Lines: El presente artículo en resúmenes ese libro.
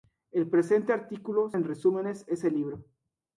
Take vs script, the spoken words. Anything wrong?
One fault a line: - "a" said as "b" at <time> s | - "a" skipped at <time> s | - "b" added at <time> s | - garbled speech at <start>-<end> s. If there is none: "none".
none